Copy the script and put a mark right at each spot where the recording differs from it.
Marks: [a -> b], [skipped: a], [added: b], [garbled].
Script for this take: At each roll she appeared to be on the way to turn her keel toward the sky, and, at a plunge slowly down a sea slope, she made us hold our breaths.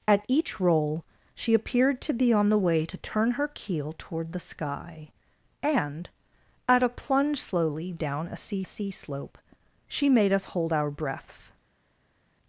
At each roll she appeared to be on the way to turn her keel toward the sky, and, at a plunge slowly down a sea [added: sea] slope, she made us hold our breaths.